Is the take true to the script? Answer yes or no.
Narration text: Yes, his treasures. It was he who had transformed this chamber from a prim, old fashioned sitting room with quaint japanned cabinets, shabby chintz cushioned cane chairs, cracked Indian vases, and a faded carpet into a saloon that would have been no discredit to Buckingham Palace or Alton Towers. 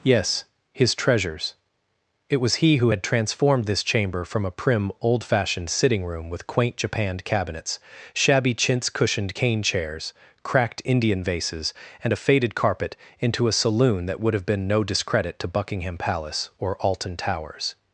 yes